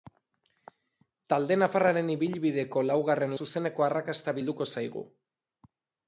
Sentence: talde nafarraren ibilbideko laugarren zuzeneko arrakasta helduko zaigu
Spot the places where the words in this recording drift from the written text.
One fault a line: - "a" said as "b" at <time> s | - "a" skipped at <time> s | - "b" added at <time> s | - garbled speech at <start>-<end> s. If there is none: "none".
none